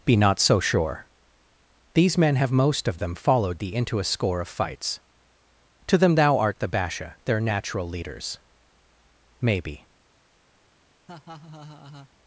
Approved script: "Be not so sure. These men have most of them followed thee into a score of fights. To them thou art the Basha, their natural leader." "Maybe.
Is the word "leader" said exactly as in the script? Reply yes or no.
no